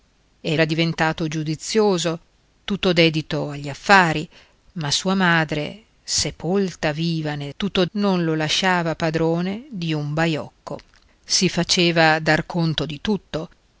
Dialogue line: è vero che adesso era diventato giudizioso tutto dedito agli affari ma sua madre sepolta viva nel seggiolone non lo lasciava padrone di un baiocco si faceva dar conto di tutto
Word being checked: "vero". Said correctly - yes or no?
no